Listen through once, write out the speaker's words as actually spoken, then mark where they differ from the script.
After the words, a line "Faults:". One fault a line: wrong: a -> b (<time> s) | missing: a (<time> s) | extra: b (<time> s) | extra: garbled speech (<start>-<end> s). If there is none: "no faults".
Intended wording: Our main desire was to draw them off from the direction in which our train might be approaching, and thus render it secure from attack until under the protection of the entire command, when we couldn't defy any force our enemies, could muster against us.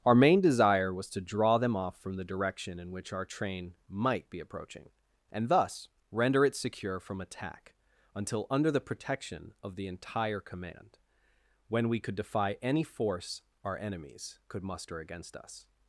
Our main desire was to draw them off from the direction in which our train might be approaching, and thus render it secure from attack until under the protection of the entire command, when we could defy any force our enemies, could muster against us.
Faults:
wrong: couldn't -> could (12.0 s)